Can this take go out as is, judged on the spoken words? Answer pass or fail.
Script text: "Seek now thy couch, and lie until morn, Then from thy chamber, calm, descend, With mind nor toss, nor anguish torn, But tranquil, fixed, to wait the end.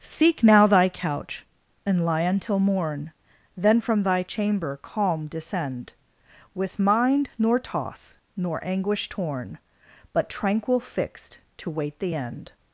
pass